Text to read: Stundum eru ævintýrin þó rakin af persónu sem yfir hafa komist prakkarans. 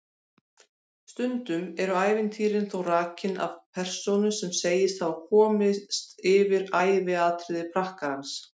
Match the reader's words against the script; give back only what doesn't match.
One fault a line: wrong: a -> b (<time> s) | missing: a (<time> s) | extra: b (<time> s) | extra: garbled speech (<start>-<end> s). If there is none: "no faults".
wrong: yfir -> segist (4.6 s)
extra: yfir æviatriði (6.3 s)